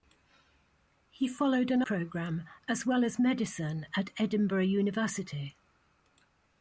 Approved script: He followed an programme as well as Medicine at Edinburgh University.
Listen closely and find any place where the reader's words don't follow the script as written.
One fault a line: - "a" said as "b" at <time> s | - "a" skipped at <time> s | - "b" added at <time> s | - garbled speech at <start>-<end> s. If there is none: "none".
none